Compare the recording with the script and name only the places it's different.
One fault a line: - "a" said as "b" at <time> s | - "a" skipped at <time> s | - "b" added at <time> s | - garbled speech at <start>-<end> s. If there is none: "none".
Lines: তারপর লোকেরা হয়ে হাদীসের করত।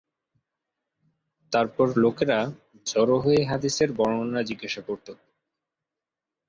- "জড়ো" added at 2.9 s
- "বর্ণনা জিজ্ঞাসা" added at 4.0 s